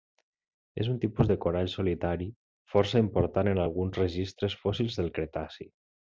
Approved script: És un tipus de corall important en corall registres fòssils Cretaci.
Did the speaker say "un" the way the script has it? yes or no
yes